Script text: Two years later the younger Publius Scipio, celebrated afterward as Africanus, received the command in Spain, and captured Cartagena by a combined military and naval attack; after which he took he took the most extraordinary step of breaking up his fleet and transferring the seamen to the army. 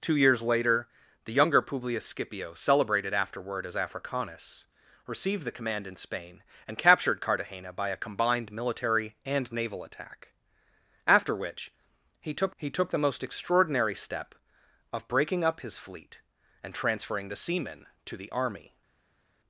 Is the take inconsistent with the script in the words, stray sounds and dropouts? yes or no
no